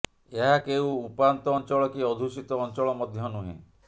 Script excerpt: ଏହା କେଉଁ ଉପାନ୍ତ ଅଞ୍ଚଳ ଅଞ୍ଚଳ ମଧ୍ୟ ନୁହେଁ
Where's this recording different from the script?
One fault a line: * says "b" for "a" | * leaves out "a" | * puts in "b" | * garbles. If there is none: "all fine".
* puts in "କି ଅଧ୍ୟୁଷିତ"